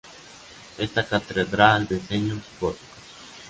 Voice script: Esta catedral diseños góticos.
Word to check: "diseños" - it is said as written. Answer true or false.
true